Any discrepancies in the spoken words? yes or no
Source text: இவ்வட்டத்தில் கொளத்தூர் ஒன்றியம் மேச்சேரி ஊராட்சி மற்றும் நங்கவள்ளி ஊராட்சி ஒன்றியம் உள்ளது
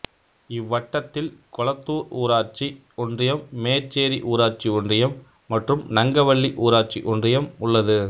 yes